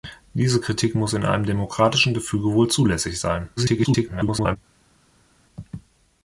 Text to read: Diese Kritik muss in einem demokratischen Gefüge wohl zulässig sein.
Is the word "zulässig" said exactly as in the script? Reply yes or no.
yes